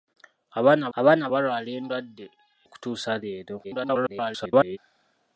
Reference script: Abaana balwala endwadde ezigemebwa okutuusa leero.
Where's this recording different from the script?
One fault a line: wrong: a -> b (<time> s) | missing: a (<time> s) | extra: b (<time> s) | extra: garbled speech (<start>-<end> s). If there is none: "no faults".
extra: abaana (1.0 s)
missing: ezigemebwa (2.3 s)
extra: garbled speech (3.6-4.8 s)